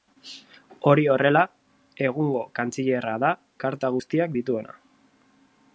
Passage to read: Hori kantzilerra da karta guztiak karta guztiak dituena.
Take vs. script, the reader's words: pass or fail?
fail